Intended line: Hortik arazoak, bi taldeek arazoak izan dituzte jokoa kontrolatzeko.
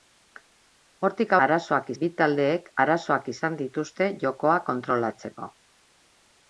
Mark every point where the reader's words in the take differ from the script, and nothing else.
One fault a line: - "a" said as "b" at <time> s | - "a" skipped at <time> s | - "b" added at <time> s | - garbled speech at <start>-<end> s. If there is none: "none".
none